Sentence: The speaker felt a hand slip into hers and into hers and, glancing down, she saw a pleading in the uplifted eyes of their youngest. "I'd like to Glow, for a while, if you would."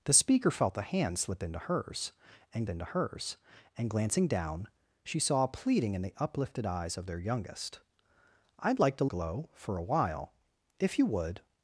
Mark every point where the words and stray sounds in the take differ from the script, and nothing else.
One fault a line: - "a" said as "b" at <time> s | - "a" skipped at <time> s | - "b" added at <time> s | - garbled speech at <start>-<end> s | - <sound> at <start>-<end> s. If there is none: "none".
none